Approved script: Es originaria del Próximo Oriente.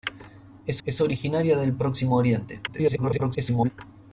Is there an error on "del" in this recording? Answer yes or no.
no